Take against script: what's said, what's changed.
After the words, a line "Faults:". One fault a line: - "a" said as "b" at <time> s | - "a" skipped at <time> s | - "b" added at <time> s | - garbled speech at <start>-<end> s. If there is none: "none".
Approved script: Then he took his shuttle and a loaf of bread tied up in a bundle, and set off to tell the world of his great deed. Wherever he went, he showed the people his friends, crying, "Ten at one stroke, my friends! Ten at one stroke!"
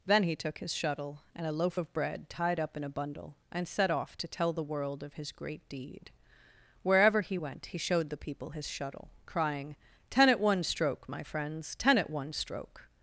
Then he took his shuttle and a loaf of bread tied up in a bundle, and set off to tell the world of his great deed. Wherever he went, he showed the people his shuttle, crying, "Ten at one stroke, my friends! Ten at one stroke!"
Faults:
- "friends" said as "shuttle" at 8.7 s